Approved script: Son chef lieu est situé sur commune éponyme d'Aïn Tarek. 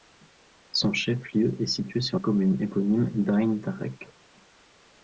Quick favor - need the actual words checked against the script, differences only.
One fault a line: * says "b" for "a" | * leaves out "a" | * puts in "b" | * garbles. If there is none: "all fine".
all fine